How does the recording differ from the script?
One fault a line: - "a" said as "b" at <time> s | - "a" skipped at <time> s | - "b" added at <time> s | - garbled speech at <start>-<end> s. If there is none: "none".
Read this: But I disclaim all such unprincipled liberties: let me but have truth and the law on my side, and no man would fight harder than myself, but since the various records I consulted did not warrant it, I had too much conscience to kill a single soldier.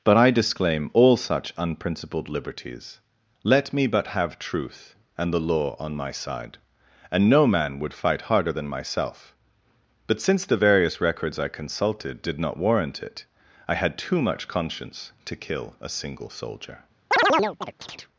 none